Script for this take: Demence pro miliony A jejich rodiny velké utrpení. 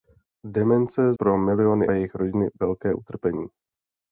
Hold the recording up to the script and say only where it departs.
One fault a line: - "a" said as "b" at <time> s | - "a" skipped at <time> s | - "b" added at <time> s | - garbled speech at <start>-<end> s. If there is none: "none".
none